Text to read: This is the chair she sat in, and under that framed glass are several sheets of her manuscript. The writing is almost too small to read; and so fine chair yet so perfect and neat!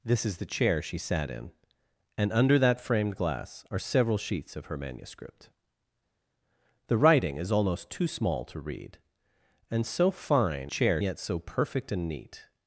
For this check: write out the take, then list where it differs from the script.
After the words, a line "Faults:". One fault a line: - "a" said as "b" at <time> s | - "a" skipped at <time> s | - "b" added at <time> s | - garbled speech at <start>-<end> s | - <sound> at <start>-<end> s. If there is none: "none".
This is the chair she sat in, and under that framed glass are several sheets of her manuscript. The writing is almost too small to read; and so fine chair yet so perfect and neat!
Faults:
none